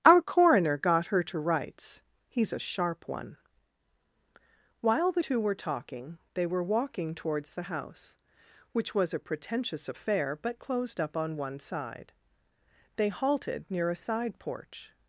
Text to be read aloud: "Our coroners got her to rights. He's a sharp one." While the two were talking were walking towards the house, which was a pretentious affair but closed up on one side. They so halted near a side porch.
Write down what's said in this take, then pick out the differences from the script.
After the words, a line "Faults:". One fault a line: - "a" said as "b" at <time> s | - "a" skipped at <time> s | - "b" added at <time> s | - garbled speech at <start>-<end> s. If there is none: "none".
"Our coroner got her to rights. He's a sharp one." While the two were talking they were walking towards the house, which was a pretentious affair but closed up on one side. They halted near a side porch.
Faults:
- "coroners" said as "coroner" at 0.2 s
- "they" added at 6.3 s
- "so" skipped at 13.1 s